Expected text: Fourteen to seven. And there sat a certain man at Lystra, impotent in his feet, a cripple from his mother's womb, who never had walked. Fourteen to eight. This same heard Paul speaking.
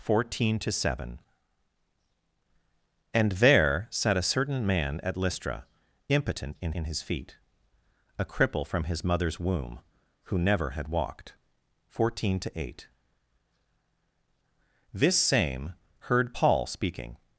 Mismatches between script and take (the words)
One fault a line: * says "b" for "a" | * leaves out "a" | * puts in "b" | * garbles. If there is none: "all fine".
* puts in "in"